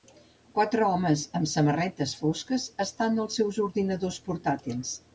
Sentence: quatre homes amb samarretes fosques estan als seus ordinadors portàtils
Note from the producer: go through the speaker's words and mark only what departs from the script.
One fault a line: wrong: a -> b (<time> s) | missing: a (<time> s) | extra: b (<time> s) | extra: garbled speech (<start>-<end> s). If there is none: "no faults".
no faults